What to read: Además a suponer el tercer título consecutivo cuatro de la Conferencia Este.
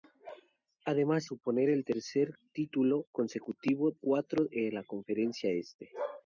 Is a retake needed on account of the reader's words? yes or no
no